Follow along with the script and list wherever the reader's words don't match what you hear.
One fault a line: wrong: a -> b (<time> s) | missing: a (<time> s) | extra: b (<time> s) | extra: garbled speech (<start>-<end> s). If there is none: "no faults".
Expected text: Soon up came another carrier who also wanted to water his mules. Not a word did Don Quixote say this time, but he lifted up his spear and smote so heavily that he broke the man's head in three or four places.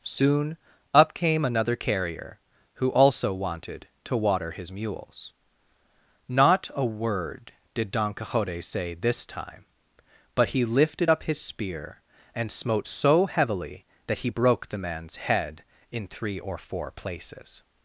no faults